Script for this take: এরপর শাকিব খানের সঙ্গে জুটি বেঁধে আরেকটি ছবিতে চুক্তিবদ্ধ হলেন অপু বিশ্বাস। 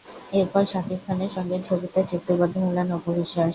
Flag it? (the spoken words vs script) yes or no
yes